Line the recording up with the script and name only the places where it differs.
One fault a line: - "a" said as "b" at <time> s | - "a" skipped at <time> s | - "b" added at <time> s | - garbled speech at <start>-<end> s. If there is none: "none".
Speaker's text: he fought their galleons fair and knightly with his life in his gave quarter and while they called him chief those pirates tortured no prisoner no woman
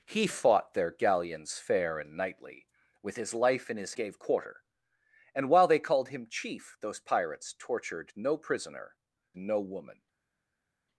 none